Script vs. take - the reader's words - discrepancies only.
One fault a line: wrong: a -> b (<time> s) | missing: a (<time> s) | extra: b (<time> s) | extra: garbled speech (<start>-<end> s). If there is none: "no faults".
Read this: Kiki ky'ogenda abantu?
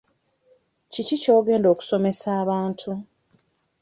extra: okusomesa (1.7 s)